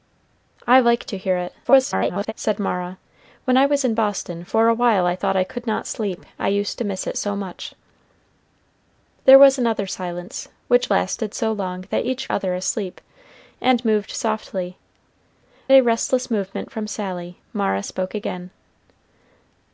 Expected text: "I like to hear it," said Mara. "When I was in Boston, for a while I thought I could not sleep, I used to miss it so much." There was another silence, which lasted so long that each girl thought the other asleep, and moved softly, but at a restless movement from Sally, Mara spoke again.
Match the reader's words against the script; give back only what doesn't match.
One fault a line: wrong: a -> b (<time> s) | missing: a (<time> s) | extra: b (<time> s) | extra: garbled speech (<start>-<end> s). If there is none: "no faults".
extra: garbled speech (1.6-2.3 s)
missing: girl thought the (12.3 s)
missing: but at (14.8 s)